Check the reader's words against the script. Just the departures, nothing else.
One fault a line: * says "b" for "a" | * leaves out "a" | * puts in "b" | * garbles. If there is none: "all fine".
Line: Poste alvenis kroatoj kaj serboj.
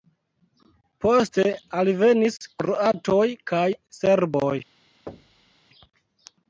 all fine